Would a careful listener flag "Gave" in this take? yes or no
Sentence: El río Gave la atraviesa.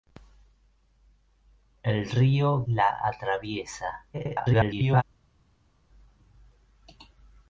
yes